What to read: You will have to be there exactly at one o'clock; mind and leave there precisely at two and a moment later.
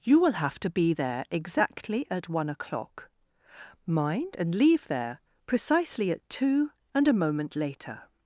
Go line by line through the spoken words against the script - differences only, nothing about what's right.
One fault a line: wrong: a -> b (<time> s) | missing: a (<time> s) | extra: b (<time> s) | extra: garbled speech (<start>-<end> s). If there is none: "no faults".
no faults